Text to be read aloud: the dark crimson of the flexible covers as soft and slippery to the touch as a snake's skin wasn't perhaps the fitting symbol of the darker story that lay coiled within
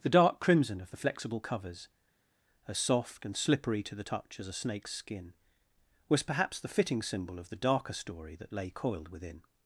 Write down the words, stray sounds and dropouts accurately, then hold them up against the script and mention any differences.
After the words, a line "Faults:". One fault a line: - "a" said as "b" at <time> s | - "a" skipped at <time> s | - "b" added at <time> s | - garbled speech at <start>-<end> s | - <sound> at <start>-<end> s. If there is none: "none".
the dark crimson of the flexible covers as soft and slippery to the touch as a snake's skin was perhaps the fitting symbol of the darker story that lay coiled within
Faults:
- "wasn't" said as "was" at 6.1 s